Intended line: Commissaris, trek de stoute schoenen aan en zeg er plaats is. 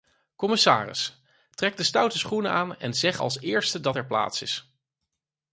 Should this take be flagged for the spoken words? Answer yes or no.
yes